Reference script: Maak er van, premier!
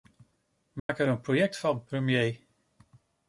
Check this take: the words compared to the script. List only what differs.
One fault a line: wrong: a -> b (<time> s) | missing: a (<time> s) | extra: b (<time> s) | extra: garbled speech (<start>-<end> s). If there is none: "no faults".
extra: een project (1.1 s)